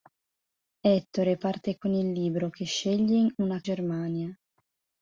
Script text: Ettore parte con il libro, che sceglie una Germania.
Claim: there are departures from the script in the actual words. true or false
false